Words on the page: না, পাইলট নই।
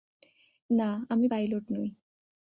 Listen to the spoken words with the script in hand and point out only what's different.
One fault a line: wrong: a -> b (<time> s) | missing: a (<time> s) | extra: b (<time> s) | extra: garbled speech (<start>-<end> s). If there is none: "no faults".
extra: আমি (1.1 s)